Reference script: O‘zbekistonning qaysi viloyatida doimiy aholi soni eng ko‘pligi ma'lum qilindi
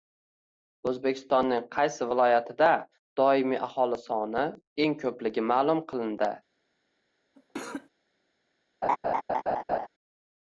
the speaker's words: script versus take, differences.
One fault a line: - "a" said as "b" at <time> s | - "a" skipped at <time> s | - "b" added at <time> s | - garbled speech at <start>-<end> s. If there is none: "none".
none